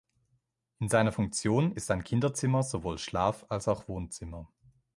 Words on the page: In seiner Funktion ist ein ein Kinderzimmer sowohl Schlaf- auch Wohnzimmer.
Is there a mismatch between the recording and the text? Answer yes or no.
yes